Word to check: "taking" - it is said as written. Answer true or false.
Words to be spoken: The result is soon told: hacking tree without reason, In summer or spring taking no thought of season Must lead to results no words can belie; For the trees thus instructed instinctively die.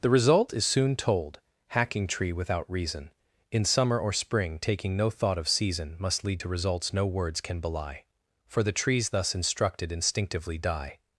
true